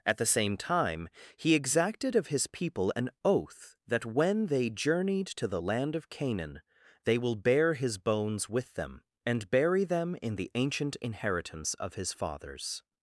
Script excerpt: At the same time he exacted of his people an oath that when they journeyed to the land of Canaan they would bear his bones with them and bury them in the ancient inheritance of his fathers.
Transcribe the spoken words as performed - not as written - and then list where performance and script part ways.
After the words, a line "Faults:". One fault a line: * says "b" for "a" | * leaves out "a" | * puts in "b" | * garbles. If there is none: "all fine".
At the same time he exacted of his people an oath that when they journeyed to the land of Canaan they will bear his bones with them and bury them in the ancient inheritance of his fathers.
Faults:
* says "will" for "would"